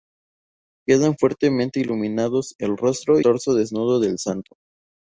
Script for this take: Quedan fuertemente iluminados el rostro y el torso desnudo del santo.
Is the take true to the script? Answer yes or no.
no